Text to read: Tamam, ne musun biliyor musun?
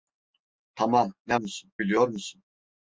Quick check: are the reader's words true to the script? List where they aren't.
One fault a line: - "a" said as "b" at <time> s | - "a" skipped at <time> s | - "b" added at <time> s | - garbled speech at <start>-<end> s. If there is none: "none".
none